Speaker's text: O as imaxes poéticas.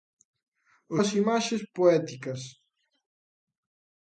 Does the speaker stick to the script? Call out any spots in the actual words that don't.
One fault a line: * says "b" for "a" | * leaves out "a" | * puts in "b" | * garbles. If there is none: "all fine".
all fine